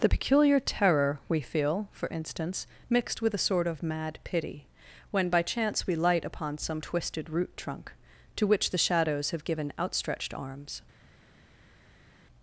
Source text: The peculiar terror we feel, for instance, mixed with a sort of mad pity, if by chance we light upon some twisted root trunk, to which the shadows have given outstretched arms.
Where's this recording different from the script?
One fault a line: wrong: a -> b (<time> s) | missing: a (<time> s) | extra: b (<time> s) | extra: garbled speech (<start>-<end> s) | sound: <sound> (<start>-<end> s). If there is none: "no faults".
wrong: if -> when (5.1 s)